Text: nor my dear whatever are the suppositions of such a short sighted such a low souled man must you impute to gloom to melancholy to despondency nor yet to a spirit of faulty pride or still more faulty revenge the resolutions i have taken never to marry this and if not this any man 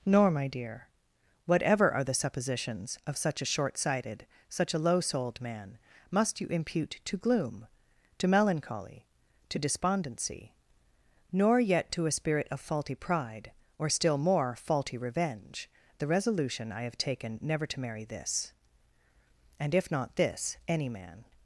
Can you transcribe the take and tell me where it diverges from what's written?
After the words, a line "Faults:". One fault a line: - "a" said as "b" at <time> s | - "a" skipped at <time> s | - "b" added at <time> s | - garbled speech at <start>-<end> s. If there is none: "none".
nor my dear whatever are the suppositions of such a short sighted such a low souled man must you impute to gloom to melancholy to despondency nor yet to a spirit of faulty pride or still more faulty revenge the resolution i have taken never to marry this and if not this any man
Faults:
- "resolutions" said as "resolution" at 16.1 s